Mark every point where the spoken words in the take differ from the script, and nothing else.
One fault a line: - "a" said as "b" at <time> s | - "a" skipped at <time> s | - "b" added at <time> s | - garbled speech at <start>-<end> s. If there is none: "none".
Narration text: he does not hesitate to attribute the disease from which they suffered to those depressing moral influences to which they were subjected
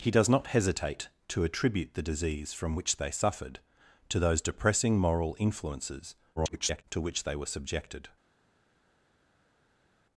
- garbled speech at 6.4-6.8 s